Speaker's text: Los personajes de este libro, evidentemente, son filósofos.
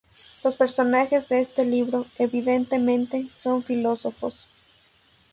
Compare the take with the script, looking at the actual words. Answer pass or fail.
pass